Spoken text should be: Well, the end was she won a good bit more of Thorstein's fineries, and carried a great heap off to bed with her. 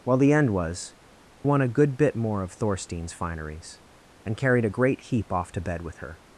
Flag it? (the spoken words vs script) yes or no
yes